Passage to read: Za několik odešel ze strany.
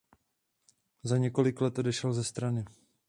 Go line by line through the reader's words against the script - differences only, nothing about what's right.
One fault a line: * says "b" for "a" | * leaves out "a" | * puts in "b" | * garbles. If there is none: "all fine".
* puts in "let"